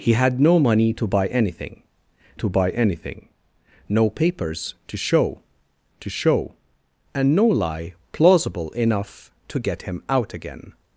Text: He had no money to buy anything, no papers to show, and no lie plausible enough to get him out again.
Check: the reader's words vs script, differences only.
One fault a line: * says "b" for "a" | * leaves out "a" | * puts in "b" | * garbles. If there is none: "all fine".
* puts in "to buy anything"
* puts in "to show"